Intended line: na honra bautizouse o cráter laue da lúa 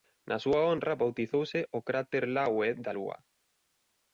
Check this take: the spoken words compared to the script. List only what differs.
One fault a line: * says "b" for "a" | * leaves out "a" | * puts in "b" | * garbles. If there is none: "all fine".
* puts in "súa"